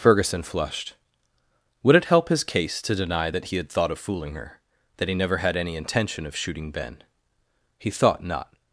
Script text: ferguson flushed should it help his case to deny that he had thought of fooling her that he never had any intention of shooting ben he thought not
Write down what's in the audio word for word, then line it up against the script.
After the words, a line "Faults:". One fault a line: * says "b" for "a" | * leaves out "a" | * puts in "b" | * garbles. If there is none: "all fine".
ferguson flushed would it help his case to deny that he had thought of fooling her that he never had any intention of shooting ben he thought not
Faults:
* says "would" for "should"